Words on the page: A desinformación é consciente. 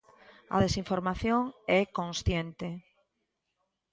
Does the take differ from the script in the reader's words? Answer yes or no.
no